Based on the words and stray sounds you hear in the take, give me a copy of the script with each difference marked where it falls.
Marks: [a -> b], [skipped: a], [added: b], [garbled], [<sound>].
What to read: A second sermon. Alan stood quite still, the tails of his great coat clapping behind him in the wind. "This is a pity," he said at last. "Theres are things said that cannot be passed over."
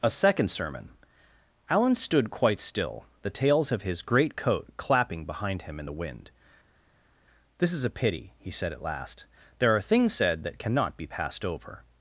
A second sermon. Alan stood quite still, the tails of his great coat clapping behind him in the wind. "This is a pity," he said at last. ["Theres -> There] are things said that cannot be passed over."